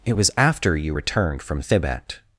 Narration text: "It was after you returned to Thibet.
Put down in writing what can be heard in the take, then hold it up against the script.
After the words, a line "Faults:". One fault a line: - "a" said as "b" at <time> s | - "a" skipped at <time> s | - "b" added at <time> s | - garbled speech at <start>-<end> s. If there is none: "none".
"It was after you returned from Thibet.
Faults:
- "to" said as "from" at 1.4 s